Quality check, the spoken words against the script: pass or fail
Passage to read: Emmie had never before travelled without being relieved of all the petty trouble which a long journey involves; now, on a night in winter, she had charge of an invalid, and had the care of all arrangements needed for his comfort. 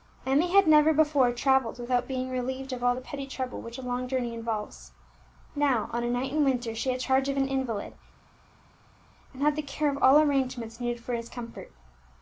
pass